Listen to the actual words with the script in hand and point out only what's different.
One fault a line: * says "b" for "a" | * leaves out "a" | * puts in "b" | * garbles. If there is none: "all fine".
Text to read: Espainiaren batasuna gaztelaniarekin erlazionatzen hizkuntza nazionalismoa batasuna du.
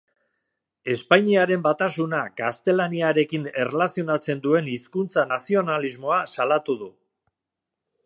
* puts in "duen"
* says "salatu" for "batasuna"